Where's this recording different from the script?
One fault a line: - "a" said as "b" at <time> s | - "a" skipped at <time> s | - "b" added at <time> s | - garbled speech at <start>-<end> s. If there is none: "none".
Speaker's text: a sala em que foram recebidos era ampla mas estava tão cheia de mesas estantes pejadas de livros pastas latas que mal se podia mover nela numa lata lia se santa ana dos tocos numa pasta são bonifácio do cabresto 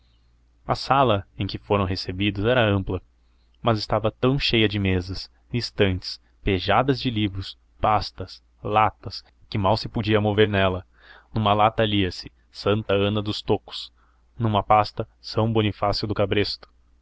none